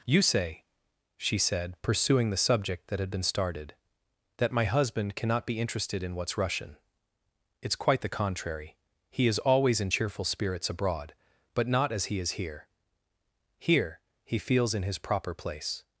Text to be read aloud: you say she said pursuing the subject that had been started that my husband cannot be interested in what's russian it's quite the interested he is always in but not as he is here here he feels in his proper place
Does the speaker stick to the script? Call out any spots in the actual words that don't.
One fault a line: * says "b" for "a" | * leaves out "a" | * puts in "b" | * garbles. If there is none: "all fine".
* says "contrary" for "interested"
* puts in "cheerful spirits abroad"